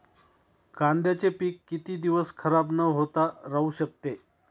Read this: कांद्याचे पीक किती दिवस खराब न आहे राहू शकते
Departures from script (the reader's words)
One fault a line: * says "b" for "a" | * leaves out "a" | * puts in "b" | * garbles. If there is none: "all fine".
* says "होता" for "आहे"